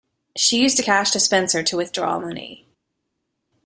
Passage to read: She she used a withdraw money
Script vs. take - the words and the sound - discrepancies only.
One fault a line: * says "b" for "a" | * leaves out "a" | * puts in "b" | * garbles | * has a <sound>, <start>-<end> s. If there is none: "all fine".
* leaves out "she"
* puts in "cash dispenser to"